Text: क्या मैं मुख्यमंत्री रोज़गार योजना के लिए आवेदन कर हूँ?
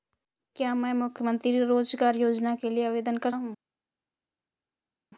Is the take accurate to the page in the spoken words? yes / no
yes